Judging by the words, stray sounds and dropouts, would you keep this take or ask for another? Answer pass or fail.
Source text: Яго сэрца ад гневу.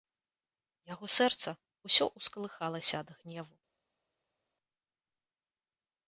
fail